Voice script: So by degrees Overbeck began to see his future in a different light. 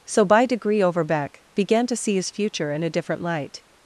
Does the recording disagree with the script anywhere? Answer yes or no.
yes